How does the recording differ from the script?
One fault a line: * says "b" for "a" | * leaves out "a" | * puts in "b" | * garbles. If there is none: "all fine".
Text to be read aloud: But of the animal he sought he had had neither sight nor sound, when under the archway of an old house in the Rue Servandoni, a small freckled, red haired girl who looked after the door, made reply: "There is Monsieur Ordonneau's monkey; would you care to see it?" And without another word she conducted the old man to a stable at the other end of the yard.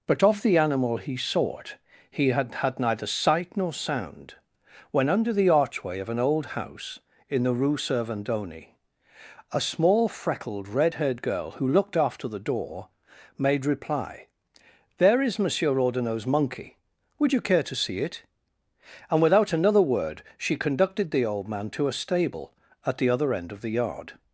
all fine